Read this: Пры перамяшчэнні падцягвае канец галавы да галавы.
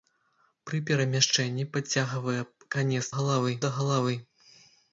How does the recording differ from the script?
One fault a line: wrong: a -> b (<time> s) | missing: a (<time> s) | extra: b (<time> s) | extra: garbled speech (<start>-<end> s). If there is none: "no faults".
no faults